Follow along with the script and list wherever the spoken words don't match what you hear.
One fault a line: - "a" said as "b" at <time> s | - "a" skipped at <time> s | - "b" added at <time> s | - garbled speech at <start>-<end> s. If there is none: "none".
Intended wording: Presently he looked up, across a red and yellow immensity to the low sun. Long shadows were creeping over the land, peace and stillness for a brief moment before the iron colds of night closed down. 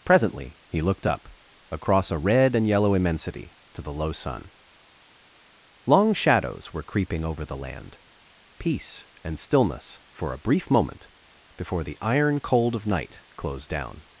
- "colds" said as "cold" at 12.4 s